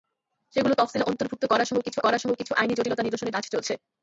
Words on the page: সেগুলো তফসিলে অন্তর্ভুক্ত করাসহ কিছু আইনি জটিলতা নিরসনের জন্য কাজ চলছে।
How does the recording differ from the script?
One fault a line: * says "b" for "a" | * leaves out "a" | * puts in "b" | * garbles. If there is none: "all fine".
* puts in "করাসহ কিছু"
* leaves out "জন্য"